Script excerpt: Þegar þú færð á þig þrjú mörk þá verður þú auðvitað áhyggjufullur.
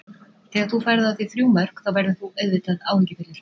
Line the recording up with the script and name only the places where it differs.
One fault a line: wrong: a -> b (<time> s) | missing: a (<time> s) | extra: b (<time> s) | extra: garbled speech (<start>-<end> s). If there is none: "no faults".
no faults